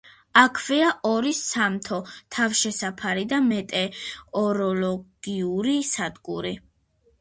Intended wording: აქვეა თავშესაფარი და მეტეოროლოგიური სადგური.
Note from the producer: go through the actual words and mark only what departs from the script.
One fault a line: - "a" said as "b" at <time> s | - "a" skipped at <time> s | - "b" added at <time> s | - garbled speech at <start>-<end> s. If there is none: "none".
- "ორი სამთო" added at 1.1 s